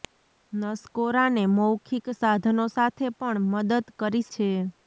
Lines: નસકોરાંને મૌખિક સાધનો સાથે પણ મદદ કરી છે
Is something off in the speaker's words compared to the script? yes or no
no